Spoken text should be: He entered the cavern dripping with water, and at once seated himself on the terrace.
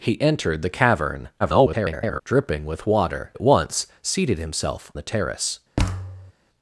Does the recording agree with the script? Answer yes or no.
no